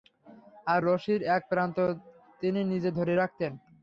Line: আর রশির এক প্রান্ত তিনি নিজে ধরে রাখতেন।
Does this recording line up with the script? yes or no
yes